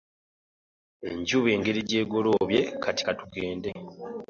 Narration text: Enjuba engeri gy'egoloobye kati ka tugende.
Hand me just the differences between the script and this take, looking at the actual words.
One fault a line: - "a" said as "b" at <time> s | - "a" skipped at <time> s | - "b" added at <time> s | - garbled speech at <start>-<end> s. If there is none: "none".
none